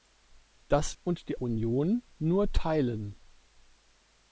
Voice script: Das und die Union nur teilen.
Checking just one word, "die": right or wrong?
right